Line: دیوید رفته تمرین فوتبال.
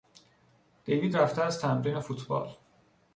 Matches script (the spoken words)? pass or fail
fail